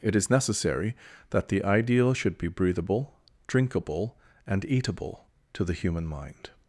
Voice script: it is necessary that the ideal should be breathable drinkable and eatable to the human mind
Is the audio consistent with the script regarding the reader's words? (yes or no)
yes